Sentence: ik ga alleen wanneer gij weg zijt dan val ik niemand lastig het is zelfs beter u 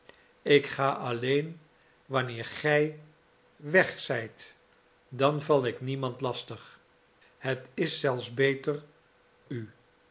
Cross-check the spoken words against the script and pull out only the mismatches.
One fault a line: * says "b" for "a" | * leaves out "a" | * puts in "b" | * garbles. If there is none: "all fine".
all fine